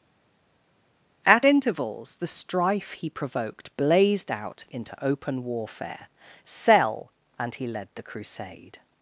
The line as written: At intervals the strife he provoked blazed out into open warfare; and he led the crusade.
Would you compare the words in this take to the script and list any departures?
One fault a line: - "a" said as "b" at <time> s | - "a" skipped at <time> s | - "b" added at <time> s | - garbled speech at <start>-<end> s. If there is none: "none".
- "sell" added at 6.4 s